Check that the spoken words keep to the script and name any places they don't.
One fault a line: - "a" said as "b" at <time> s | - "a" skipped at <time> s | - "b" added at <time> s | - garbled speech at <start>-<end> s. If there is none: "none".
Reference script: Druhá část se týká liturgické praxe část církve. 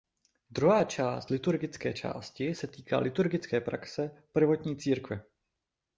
- "liturgické části" added at 1.3 s
- "část" said as "prvotní" at 4.3 s